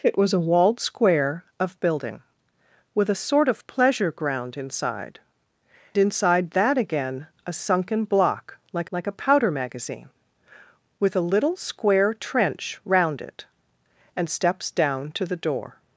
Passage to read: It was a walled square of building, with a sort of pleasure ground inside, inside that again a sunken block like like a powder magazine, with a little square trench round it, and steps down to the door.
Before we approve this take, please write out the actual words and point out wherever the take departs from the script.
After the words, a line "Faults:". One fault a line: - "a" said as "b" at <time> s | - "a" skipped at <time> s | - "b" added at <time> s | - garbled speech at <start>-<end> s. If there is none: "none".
It was a walled square of building, with a sort of pleasure ground inside, inside that again a sunken block like like a powder magazine, with a little square trench round it, and steps down to the door.
Faults:
none